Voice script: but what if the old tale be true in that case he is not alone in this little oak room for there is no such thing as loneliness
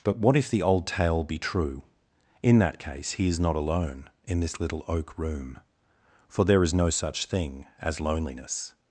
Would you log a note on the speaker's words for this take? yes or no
no